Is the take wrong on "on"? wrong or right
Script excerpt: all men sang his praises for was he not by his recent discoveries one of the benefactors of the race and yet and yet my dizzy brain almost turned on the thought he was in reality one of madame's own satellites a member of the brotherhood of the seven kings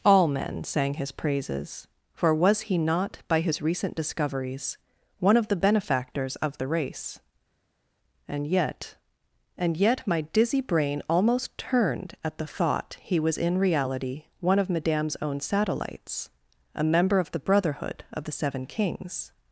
wrong